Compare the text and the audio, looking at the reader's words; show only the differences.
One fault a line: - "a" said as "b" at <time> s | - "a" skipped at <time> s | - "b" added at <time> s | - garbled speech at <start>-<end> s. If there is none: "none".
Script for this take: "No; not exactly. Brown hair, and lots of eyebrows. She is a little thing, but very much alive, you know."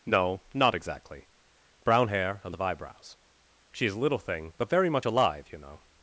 - "lots" skipped at 2.5 s